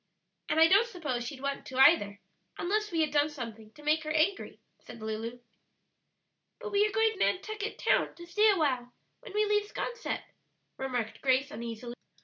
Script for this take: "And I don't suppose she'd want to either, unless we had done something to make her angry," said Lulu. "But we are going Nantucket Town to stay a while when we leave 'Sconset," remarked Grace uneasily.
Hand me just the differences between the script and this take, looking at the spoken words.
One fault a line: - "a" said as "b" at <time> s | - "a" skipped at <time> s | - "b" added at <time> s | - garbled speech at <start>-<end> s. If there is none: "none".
none